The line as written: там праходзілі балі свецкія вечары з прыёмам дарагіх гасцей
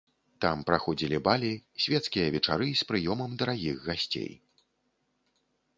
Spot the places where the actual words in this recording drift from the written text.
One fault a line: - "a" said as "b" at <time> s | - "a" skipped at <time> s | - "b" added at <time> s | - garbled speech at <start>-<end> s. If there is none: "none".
none